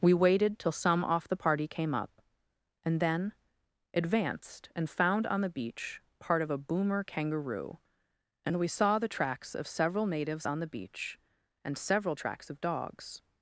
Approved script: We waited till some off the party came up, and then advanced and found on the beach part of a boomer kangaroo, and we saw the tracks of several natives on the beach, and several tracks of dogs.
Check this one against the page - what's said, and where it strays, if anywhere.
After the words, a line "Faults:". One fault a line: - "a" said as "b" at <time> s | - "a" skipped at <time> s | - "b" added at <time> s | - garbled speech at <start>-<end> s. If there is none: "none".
We waited till some off the party came up, and then advanced and found on the beach part of a boomer kangaroo, and we saw the tracks of several natives on the beach, and several tracks of dogs.
Faults:
none